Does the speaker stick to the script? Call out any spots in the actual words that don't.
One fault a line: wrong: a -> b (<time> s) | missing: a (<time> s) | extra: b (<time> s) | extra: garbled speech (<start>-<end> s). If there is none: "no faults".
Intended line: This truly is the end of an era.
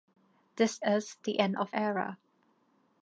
missing: truly (0.8 s)
missing: an (1.7 s)